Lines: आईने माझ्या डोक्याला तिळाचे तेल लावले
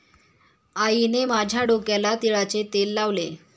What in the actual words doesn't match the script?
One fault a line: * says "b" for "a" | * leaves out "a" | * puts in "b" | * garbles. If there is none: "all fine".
all fine